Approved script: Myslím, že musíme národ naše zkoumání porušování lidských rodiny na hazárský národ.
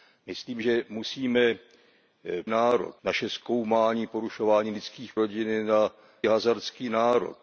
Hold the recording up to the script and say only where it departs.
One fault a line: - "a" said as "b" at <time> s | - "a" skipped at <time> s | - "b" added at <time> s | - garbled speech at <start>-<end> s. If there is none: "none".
none